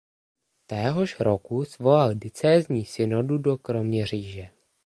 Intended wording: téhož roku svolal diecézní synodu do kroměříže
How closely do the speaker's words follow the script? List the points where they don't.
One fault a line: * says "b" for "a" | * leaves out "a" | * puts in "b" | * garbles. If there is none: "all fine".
all fine